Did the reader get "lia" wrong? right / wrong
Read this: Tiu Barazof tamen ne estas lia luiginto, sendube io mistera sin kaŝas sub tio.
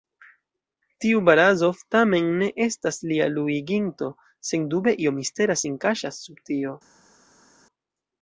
right